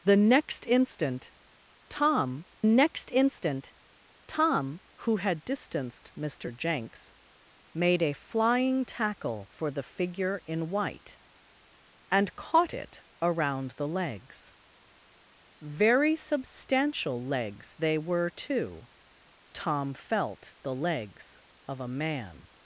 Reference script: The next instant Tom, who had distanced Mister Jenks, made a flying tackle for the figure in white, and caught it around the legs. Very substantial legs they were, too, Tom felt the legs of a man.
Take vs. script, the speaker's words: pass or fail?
fail